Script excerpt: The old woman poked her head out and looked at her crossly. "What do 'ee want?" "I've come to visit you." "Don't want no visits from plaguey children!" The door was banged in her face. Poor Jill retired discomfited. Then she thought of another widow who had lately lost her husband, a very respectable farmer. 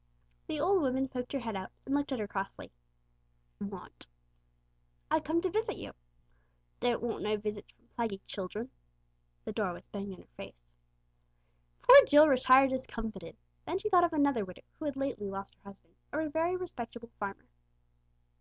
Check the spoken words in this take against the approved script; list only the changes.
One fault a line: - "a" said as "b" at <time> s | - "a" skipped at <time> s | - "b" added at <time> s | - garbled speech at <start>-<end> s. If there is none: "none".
- "What do ee" skipped at 2.7 s